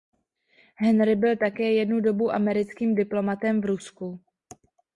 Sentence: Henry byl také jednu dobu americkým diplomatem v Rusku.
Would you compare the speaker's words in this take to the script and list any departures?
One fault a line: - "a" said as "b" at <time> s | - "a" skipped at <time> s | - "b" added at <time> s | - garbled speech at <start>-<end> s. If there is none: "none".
none